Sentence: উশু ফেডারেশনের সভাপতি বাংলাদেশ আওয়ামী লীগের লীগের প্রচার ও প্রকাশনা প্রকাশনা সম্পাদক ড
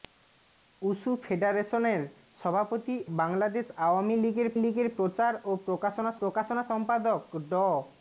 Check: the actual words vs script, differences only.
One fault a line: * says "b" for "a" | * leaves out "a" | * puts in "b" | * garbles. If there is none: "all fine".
all fine